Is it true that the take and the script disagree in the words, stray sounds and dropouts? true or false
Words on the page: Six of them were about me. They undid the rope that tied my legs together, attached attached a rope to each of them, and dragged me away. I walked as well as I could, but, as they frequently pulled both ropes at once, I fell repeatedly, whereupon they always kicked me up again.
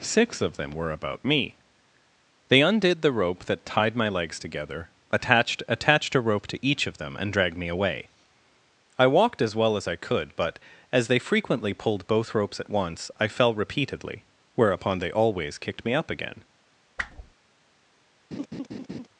true